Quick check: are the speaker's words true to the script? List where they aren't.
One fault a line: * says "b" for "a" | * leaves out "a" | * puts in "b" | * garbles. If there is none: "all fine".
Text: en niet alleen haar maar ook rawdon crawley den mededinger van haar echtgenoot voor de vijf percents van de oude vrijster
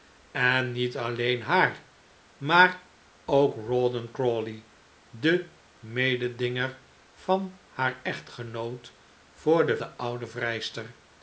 * leaves out "vijf percents van"